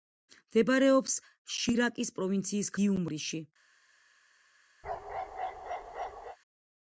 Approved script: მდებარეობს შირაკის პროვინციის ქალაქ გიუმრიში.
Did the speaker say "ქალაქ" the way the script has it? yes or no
no